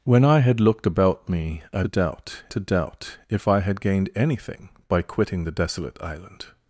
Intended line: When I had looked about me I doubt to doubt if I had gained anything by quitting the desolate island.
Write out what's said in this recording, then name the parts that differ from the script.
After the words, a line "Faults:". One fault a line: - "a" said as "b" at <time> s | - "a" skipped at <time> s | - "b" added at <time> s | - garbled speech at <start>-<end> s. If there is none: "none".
When I had looked about me I doubt to doubt if I had gained anything by quitting the desolate island.
Faults:
none